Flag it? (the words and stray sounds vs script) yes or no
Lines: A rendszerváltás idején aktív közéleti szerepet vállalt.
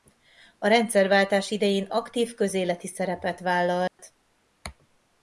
yes